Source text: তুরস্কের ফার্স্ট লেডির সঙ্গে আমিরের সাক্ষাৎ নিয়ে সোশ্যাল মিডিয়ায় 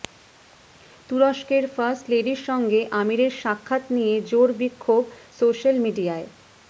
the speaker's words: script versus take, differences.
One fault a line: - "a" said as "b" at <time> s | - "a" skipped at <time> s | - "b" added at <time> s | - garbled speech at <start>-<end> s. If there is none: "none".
- "জোর বিক্ষোভ" added at 4.3 s